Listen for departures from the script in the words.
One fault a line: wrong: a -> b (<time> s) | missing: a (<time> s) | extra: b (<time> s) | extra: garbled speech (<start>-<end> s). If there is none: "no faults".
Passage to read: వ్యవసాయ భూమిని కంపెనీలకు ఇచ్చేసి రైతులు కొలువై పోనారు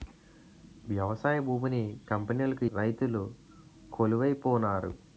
missing: ఇచ్చేసి (2.6 s)